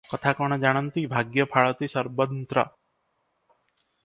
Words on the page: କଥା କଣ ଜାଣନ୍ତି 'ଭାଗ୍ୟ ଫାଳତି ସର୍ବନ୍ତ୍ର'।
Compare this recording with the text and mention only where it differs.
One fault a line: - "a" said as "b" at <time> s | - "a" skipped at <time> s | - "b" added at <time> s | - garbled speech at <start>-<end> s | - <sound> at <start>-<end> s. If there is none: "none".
none